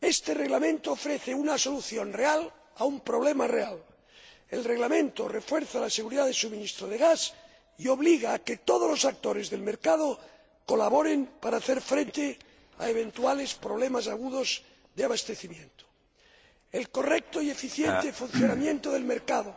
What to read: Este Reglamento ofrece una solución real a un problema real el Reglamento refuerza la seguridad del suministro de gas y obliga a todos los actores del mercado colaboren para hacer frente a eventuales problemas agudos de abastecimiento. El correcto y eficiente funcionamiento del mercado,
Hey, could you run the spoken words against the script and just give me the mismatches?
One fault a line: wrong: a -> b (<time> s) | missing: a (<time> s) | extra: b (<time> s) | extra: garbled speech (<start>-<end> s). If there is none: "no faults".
extra: que (8.4 s)